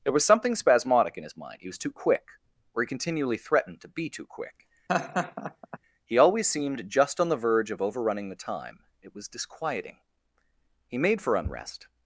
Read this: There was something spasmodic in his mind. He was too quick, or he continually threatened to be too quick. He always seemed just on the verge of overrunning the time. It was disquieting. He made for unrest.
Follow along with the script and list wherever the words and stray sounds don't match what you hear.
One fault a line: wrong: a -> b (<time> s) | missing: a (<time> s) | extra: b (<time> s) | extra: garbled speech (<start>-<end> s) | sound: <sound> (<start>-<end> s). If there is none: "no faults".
sound: laugh (4.9-5.8 s)